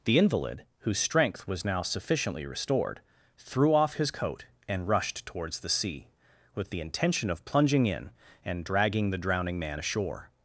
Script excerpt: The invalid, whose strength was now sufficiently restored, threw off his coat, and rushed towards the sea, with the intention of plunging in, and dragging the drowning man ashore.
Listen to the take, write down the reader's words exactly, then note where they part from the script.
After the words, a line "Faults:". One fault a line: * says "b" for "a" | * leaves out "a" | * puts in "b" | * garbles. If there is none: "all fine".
The invalid, whose strength was now sufficiently restored, threw off his coat, and rushed towards the sea, with the intention of plunging in, and dragging the drowning man ashore.
Faults:
all fine